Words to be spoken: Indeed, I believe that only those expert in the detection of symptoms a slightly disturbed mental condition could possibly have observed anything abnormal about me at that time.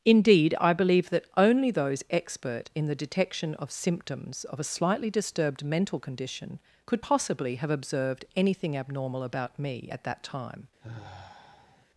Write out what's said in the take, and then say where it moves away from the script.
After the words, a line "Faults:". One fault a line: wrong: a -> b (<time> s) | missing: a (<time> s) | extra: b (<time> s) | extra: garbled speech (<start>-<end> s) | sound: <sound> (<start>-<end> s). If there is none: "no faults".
Indeed, I believe that only those expert in the detection of symptoms of a slightly disturbed mental condition could possibly have observed anything abnormal about me at that time.
Faults:
extra: of (4.5 s)
sound: sigh (10.8-11.9 s)